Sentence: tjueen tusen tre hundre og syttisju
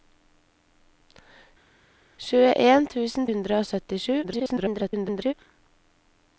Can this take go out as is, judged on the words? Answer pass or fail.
fail